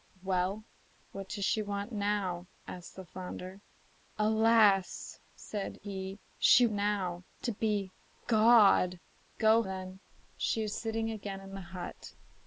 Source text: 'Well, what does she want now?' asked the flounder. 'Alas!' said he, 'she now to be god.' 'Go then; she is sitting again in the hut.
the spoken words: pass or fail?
pass